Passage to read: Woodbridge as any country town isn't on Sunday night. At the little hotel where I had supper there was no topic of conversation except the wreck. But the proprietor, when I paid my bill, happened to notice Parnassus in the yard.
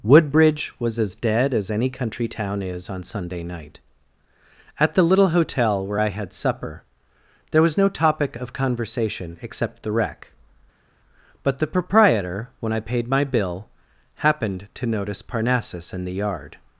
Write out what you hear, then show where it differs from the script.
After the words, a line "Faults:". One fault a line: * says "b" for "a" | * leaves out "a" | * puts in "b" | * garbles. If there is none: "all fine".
Woodbridge was as dead as any country town is on Sunday night. At the little hotel where I had supper there was no topic of conversation except the wreck. But the proprietor, when I paid my bill, happened to notice Parnassus in the yard.
Faults:
* puts in "was"
* puts in "dead as"
* says "is" for "isn't"